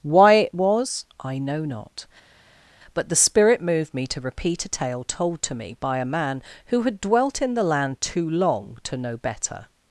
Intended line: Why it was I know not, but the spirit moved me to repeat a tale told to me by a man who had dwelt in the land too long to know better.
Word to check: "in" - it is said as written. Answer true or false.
true